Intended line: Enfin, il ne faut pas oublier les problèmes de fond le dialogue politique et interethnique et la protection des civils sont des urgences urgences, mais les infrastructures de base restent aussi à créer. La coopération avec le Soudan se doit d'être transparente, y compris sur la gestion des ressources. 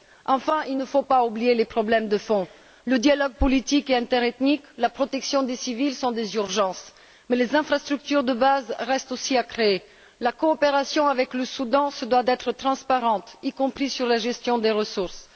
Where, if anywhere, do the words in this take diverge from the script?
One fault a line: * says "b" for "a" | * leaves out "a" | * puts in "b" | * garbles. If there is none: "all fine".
* leaves out "urgences"